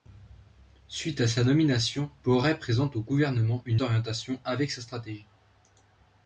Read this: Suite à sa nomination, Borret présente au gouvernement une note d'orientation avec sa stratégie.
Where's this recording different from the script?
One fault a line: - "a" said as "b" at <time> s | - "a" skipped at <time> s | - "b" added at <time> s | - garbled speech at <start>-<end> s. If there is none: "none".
- "note" skipped at 3.8 s